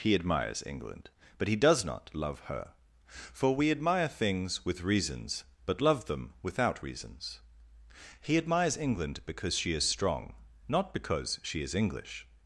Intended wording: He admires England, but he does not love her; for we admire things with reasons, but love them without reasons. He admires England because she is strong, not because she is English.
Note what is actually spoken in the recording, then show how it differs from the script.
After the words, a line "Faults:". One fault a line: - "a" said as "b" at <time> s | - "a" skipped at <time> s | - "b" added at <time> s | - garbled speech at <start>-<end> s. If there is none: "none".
He admires England, but he does not love her; for we admire things with reasons, but love them without reasons. He admires England because she is strong, not because she is English.
Faults:
none